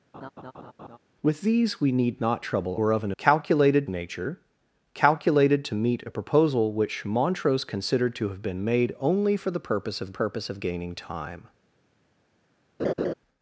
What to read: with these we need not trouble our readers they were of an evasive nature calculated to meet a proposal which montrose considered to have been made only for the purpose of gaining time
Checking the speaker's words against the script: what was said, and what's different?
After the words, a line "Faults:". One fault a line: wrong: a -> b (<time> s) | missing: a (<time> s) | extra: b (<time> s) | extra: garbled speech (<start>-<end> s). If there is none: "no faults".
with these we need not trouble were of an calculated nature calculated to meet a proposal which montrose considered to have been made only for the purpose of purpose of gaining time
Faults:
missing: our readers they (2.8 s)
wrong: evasive -> calculated (3.2 s)
extra: purpose of (10.1 s)